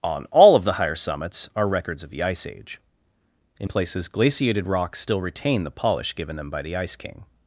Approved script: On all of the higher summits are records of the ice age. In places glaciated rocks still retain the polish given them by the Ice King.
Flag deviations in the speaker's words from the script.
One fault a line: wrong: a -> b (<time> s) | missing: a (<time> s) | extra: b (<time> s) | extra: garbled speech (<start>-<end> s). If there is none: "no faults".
no faults